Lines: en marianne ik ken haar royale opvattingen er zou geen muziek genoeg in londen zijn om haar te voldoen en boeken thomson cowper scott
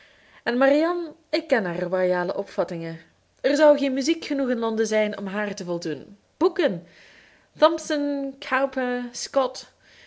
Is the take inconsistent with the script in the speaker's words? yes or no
yes